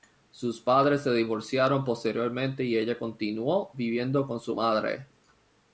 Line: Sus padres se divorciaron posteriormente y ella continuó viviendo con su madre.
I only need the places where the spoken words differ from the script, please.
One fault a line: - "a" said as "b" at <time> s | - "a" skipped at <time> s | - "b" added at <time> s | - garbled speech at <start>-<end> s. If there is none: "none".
none